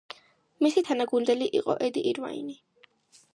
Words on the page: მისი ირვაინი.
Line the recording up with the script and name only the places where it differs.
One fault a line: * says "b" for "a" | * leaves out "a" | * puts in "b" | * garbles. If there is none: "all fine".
* puts in "თანაგუნდელი იყო ედი"